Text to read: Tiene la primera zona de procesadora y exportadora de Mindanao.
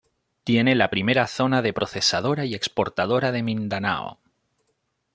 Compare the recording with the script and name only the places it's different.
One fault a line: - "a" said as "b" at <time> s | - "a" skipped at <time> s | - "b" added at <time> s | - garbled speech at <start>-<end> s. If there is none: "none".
none